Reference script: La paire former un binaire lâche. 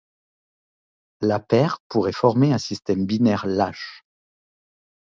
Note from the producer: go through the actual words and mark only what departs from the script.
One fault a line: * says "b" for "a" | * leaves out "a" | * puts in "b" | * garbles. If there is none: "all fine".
* puts in "pourrait"
* puts in "système"